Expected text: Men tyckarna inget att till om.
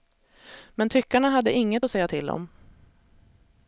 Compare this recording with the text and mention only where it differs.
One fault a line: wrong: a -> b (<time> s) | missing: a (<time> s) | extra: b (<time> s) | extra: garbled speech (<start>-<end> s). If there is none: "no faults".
extra: hade (1.3 s)
extra: säga (1.9 s)